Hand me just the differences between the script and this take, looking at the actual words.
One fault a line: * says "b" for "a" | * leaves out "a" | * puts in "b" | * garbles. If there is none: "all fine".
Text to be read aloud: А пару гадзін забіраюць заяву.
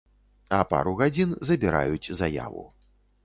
all fine